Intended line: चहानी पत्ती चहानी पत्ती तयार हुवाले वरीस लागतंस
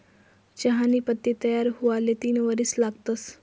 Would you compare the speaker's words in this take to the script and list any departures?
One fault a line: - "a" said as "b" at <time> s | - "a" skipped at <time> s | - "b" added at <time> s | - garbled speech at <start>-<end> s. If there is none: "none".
- "चहानी पत्ती" skipped at 1.3 s
- "तीन" added at 2.2 s